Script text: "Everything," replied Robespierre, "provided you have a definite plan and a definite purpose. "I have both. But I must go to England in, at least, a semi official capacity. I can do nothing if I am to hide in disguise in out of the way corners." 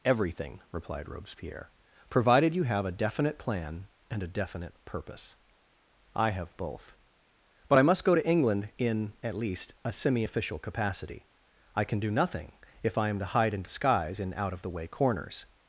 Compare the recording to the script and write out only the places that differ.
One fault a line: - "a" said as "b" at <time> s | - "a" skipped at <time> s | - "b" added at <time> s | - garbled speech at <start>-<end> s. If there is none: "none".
none